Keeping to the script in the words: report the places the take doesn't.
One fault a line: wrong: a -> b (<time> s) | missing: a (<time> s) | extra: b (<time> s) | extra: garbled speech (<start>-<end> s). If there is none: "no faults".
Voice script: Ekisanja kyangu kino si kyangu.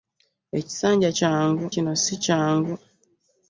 no faults